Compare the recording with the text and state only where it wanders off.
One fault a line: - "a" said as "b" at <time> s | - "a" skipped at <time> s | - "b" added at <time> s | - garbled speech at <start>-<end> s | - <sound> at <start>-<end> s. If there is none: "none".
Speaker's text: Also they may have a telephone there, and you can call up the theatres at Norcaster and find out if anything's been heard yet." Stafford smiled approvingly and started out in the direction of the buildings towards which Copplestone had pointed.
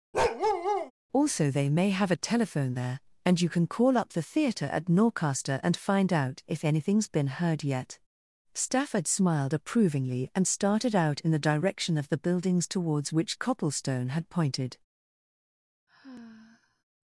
- bark at 0.1-0.9 s
- "theatres" said as "theatre" at 4.2 s
- sigh at 15.9-16.8 s